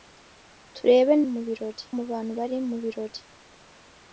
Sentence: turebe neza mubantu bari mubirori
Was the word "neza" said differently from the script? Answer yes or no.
yes